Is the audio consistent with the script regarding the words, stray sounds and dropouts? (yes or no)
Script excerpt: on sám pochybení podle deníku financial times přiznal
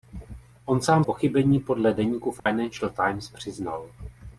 no